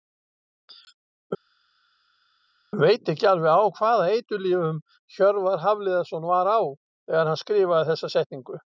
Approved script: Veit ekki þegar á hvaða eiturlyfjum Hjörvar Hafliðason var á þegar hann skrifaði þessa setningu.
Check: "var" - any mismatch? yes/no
no